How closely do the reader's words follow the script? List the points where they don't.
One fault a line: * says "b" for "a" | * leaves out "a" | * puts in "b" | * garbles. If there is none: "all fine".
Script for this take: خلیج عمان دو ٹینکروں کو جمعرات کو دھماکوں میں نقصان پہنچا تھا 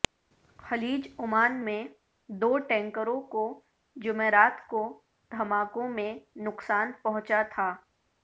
* puts in "میں"